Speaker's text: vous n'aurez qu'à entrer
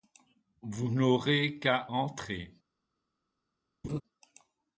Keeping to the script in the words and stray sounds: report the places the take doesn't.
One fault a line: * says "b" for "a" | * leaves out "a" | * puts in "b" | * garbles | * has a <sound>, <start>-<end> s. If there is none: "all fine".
* has a laugh, 3.8-4.0 s